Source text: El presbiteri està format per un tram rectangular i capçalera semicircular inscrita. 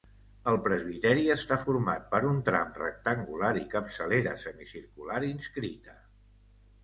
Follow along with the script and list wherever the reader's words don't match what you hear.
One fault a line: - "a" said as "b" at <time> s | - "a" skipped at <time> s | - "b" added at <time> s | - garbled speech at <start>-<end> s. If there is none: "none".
none